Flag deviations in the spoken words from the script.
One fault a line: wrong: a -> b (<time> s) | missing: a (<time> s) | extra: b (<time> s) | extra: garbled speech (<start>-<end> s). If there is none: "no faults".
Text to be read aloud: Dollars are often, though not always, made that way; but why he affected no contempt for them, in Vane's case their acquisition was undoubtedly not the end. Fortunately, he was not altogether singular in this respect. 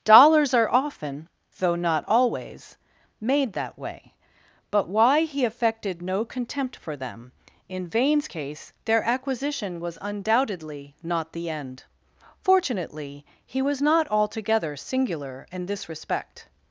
no faults